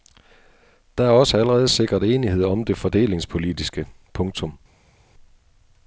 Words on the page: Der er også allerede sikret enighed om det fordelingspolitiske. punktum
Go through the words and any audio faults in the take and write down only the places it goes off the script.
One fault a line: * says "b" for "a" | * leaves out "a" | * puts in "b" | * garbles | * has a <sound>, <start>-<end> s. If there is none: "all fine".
all fine